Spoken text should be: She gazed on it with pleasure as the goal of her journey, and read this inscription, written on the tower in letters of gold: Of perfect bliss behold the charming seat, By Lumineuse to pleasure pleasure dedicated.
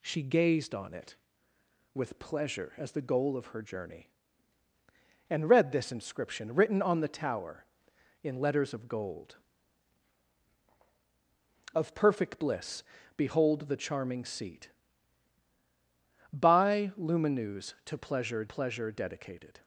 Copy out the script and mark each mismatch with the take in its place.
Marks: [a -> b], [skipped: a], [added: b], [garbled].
She gazed on it with pleasure as the goal of her journey, and read this inscription, written on the tower in letters of gold: Of perfect bliss behold the charming seat, By Lumineuse to pleasure pleasure dedicated.